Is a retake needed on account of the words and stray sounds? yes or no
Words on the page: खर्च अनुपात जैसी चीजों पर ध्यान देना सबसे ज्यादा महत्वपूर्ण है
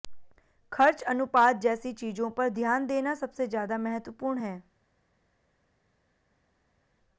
no